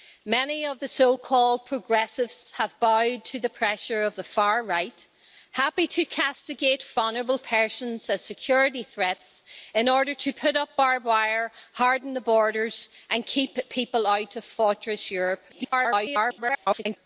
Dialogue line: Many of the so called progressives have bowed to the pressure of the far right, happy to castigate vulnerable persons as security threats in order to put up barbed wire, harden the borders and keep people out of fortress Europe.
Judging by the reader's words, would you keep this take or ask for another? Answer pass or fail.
fail